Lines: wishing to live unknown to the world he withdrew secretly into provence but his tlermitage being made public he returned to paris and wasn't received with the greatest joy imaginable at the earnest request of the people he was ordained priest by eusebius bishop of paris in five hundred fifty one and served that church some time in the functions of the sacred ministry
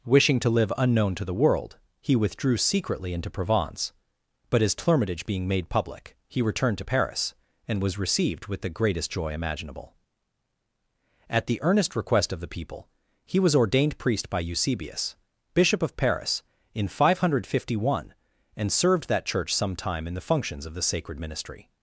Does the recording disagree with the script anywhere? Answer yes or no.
yes